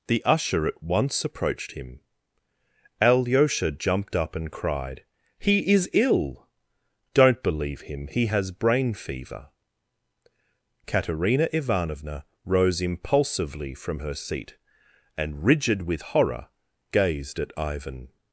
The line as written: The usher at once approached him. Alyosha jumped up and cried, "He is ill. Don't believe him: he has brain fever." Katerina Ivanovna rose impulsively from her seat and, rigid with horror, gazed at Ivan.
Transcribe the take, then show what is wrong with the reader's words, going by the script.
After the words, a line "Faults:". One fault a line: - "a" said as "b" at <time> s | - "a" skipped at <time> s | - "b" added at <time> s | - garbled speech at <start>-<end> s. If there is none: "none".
The usher at once approached him. Alyosha jumped up and cried, "He is ill. Don't believe him: he has brain fever." Katerina Ivanovna rose impulsively from her seat and, rigid with horror, gazed at Ivan.
Faults:
none